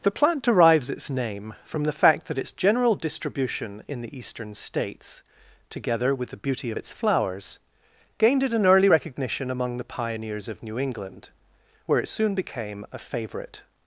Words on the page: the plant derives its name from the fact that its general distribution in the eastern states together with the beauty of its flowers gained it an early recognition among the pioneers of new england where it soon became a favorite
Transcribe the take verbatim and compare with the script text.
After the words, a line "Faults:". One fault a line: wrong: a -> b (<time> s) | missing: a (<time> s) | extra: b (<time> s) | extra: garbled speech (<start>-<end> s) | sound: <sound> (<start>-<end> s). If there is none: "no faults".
the plant derives its name from the fact that its general distribution in the eastern states together with the beauty of its flowers gained it an early recognition among the pioneers of new england where it soon became a favorite
Faults:
no faults